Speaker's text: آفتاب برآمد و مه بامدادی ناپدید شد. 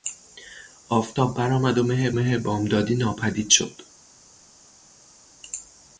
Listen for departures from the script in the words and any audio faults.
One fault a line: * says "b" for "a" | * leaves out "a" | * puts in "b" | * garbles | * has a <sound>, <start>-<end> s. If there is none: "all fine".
* puts in "مه"